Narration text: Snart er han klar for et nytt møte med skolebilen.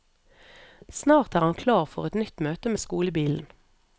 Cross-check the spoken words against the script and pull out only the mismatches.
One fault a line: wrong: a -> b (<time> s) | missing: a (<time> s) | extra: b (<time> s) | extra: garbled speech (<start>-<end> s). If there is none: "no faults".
no faults